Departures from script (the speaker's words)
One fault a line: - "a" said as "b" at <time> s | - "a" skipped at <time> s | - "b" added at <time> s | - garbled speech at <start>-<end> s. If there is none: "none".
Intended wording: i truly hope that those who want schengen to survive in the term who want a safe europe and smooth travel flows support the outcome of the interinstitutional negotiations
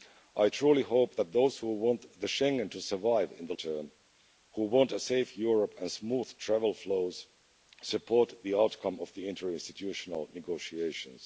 none